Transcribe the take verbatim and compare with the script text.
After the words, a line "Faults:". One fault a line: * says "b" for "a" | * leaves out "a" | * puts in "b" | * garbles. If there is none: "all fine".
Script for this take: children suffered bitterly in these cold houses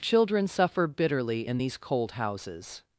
children suffer bitterly in these cold houses
Faults:
* says "suffer" for "suffered"